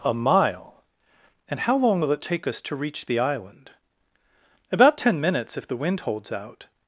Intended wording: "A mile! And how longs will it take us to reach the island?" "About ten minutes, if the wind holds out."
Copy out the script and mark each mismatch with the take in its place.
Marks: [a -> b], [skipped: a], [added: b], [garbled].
"A mile! And how [longs -> long] will it take us to reach the island?" "About ten minutes, if the wind holds out."